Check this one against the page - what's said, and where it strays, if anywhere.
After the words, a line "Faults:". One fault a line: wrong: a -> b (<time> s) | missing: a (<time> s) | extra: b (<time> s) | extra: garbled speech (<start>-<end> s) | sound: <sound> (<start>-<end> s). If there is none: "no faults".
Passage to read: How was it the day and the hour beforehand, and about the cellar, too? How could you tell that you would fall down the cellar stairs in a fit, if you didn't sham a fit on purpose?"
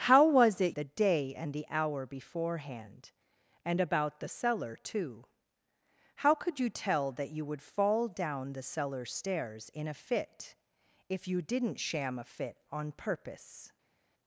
How was it the day and the hour beforehand, and about the cellar, too? How could you tell that you would fall down the cellar stairs in a fit, if you didn't sham a fit on purpose?"
Faults:
no faults